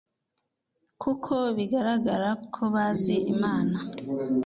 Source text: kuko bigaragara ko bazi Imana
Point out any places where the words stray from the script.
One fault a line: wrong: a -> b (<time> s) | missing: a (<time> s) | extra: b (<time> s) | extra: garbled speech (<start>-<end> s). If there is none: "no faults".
no faults